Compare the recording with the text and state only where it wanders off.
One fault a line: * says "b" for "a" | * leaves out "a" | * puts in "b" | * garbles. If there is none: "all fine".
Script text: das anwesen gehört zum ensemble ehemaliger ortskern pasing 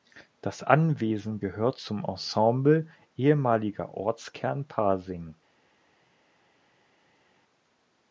all fine